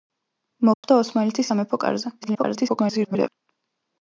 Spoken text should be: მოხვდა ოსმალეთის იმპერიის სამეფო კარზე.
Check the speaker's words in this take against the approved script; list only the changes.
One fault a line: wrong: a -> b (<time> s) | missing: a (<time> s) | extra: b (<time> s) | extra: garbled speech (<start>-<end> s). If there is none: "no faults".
missing: იმპერიის (1.5 s)
extra: garbled speech (2.2-3.3 s)